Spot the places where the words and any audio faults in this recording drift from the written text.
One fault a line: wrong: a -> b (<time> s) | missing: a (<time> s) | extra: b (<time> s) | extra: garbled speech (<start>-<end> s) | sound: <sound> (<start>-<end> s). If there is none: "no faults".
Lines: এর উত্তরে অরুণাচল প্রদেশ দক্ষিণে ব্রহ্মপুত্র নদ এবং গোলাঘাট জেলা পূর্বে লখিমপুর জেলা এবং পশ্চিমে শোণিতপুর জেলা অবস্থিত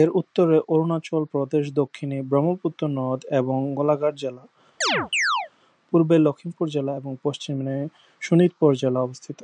sound: chirp (4.8-5.5 s)